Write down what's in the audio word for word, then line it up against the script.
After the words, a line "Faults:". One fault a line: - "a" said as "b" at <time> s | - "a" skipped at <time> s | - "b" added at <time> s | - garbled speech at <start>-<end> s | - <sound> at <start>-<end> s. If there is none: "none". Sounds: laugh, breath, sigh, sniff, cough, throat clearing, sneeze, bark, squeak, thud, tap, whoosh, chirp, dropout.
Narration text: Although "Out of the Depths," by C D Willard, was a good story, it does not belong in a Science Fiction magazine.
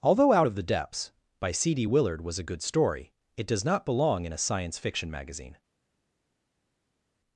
Although "Out of the Depths," by C D Willard, was a good story, it does not belong in a Science Fiction magazine.
Faults:
none